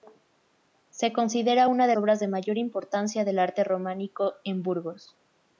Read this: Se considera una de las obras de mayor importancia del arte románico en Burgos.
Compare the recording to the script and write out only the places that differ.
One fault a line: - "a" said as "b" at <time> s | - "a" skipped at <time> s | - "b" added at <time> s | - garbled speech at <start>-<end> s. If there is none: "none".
- "las" skipped at 2.0 s